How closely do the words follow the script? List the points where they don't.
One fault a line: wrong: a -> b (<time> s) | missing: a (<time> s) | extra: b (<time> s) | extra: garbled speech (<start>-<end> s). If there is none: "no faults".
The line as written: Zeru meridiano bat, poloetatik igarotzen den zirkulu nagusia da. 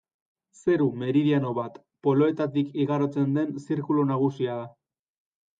no faults